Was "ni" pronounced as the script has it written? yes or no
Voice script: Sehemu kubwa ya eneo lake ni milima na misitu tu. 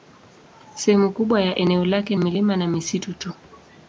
no